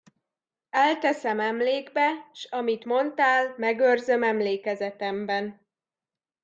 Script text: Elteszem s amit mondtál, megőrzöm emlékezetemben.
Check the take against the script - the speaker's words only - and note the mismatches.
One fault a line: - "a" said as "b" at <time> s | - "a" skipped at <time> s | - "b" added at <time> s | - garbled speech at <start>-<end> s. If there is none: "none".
- "emlékbe" added at 1.4 s